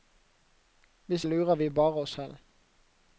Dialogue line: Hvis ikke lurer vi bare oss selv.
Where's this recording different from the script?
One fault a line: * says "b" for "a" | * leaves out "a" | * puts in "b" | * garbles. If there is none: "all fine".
* leaves out "ikke"